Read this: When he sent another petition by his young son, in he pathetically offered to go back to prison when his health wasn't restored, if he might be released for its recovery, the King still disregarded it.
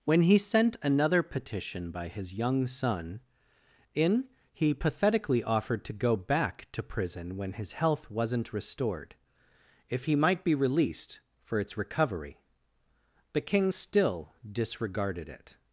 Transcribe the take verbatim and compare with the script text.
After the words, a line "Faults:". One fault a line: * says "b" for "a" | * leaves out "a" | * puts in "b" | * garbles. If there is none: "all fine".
When he sent another petition by his young son, in he pathetically offered to go back to prison when his health wasn't restored, if he might be released for its recovery, the King still disregarded it.
Faults:
all fine